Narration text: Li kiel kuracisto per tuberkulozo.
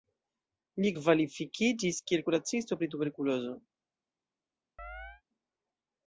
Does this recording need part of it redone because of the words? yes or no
yes